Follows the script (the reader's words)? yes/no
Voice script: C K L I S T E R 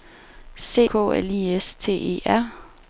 yes